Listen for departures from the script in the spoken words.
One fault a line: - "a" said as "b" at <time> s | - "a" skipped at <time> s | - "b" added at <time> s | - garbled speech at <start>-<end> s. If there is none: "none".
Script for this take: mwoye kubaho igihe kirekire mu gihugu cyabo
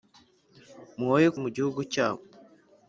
- "kubaho igihe kirekire" skipped at 1.3 s